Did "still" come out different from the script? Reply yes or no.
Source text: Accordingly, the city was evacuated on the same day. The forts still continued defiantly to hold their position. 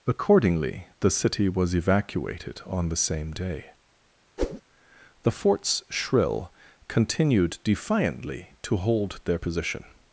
yes